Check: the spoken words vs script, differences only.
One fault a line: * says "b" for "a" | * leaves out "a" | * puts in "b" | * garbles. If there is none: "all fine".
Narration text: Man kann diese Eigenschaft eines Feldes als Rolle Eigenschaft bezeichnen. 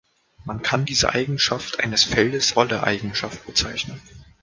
* leaves out "als"